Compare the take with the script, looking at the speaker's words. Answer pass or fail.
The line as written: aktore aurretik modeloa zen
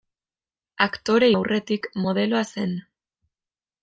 pass